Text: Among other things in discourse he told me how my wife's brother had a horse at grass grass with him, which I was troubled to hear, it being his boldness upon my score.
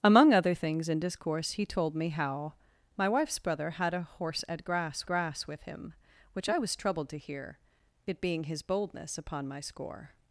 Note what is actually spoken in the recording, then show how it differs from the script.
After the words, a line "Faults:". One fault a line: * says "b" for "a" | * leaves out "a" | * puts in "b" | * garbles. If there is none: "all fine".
Among other things in discourse he told me how my wife's brother had a horse at grass grass with him, which I was troubled to hear, it being his boldness upon my score.
Faults:
all fine